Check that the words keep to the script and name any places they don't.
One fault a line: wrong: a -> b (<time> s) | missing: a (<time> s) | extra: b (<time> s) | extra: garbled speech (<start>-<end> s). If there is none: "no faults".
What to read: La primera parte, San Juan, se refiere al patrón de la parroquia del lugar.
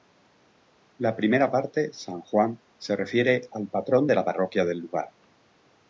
no faults